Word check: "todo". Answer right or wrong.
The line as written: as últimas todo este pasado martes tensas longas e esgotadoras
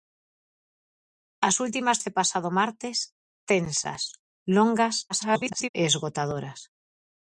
wrong